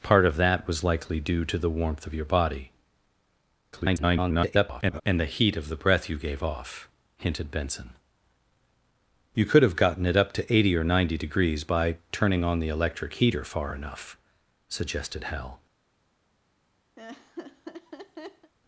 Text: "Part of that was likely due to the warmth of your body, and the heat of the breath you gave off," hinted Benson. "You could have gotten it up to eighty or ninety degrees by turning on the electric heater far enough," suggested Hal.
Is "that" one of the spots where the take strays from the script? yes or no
no